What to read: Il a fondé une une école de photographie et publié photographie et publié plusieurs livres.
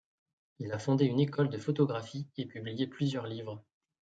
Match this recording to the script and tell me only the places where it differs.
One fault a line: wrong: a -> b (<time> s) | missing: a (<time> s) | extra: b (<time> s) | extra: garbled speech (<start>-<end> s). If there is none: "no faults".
missing: une (1.2 s)
missing: photographie et publié (2.9 s)